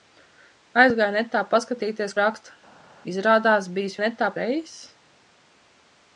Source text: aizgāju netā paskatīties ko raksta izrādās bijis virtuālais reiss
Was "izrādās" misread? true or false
false